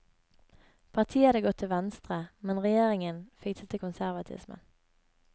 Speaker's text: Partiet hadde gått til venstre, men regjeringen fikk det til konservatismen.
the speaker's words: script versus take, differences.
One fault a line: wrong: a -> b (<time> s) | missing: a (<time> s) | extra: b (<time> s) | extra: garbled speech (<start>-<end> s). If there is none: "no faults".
no faults